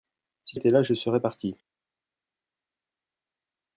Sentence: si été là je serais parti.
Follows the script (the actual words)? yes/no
yes